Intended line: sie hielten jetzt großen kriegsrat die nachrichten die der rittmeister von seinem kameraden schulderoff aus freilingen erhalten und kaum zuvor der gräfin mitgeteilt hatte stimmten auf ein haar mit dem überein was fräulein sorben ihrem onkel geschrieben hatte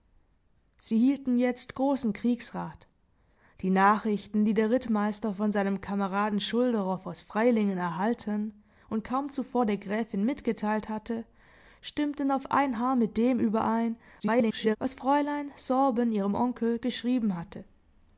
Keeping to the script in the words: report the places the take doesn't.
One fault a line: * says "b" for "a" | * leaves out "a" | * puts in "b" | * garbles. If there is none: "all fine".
* garbles